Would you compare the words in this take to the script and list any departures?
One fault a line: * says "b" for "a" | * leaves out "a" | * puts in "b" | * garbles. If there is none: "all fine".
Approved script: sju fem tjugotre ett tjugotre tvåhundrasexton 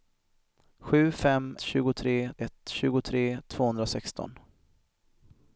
all fine